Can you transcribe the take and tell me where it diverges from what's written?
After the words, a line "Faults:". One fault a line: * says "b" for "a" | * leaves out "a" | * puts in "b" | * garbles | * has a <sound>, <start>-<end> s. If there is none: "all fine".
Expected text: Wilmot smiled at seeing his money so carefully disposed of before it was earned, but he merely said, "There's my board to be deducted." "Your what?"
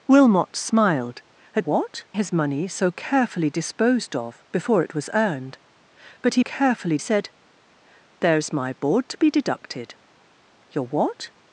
Wilmot smiled at what his money so carefully disposed of before it was earned, but he carefully said, "There's my board to be deducted." "Your what?"
Faults:
* says "what" for "seeing"
* says "carefully" for "merely"